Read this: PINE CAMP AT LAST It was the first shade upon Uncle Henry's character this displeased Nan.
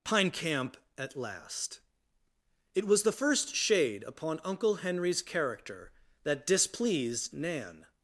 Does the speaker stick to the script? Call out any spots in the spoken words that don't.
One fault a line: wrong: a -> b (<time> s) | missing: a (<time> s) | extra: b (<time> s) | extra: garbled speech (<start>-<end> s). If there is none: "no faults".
wrong: this -> that (6.2 s)